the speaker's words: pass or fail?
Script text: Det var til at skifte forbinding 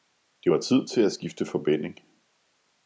fail